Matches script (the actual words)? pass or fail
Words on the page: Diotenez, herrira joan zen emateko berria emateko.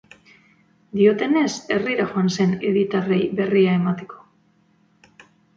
fail